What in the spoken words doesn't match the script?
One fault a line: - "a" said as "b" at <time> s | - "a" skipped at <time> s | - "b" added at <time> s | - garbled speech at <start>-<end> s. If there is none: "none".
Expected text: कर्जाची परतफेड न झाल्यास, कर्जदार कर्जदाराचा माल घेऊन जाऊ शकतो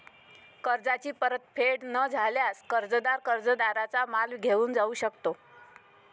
none